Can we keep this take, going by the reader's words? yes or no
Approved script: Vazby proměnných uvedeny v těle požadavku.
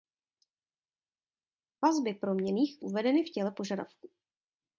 yes